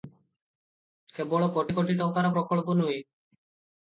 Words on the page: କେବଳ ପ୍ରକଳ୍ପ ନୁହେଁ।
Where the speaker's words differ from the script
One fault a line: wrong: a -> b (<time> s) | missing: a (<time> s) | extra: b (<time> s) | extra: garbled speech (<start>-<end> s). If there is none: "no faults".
extra: କୋଟି କୋଟି ଟଙ୍କାର (1.6 s)